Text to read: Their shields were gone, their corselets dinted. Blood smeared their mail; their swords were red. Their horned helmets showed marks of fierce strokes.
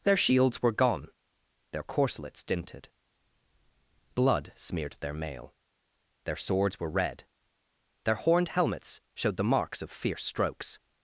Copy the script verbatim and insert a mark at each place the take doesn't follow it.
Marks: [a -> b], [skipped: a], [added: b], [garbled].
Their shields were gone, their corselets dinted. Blood smeared their mail; their swords were red. Their horned helmets showed [added: the] marks of fierce strokes.